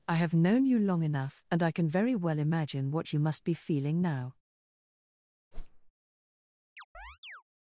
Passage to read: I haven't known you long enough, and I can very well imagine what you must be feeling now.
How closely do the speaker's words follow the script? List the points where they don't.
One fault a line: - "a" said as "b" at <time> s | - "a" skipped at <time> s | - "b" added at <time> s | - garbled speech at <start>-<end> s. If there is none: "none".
- "haven't" said as "have" at 0.1 s